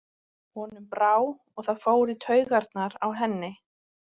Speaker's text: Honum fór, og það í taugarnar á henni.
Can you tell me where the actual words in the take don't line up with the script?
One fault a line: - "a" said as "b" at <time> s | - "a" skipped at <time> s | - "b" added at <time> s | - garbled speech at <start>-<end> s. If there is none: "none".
- "fór" said as "brá" at 0.9 s
- "fór" added at 1.9 s